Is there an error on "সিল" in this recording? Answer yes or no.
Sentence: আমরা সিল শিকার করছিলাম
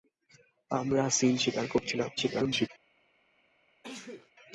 no